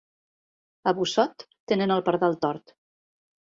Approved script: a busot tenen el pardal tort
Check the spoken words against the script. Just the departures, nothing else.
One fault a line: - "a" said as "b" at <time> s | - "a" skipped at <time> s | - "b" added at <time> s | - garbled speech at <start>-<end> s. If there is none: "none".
none